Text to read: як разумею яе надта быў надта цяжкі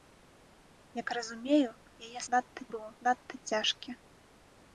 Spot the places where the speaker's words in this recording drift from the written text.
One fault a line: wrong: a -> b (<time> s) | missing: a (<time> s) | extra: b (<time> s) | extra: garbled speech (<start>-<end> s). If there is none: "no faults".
no faults